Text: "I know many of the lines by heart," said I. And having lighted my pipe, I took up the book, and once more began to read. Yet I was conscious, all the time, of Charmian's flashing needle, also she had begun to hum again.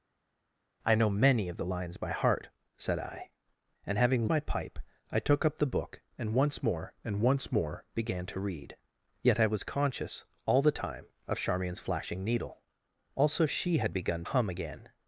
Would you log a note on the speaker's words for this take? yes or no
yes